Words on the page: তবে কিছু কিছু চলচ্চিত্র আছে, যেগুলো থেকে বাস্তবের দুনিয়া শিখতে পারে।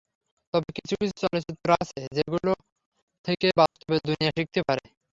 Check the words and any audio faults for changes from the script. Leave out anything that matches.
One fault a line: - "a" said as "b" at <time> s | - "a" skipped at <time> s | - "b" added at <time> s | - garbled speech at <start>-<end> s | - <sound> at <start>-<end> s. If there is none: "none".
- dropout at 3.7-3.8 s